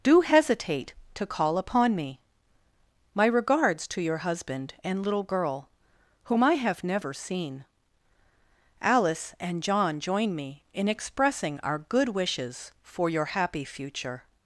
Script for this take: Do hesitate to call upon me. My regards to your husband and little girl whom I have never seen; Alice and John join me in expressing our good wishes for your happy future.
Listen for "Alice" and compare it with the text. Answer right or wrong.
right